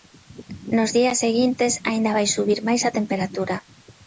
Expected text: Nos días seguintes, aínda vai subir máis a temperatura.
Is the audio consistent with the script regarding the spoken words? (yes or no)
yes